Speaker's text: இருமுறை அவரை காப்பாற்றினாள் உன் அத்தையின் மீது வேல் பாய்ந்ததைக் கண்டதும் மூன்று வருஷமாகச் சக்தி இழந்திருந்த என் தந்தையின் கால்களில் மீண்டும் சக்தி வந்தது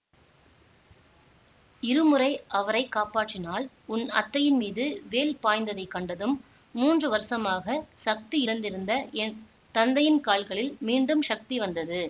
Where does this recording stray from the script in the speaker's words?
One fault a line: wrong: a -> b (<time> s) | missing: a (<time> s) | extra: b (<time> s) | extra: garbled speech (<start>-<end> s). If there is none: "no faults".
no faults